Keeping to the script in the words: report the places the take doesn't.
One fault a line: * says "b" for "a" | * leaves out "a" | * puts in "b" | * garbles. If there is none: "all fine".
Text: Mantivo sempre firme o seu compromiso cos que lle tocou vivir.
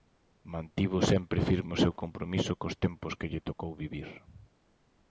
* puts in "tempos"